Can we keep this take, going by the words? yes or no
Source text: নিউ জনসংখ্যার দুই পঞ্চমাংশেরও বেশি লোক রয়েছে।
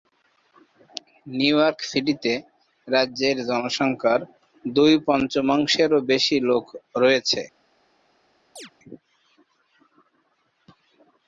no